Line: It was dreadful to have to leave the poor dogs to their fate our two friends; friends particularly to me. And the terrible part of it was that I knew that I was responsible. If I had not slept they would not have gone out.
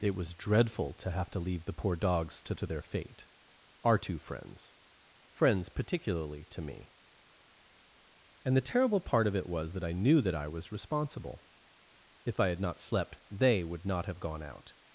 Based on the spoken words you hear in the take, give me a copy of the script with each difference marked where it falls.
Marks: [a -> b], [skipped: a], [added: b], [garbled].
It was dreadful to have to leave the poor dogs to [added: to] their fate our two friends; friends particularly to me. And the terrible part of it was that I knew that I was responsible. If I had not slept they would not have gone out.